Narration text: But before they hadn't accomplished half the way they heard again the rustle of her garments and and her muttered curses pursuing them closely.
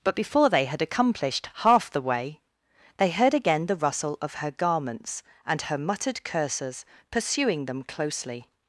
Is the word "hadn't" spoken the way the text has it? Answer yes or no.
no